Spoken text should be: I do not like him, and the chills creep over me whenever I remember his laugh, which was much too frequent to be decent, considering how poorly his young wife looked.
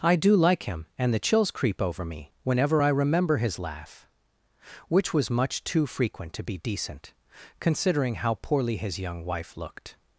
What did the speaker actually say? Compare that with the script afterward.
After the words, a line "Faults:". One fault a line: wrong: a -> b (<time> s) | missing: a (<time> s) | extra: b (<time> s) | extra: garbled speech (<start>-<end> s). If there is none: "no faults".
I do like him, and the chills creep over me whenever I remember his laugh, which was much too frequent to be decent, considering how poorly his young wife looked.
Faults:
missing: not (0.3 s)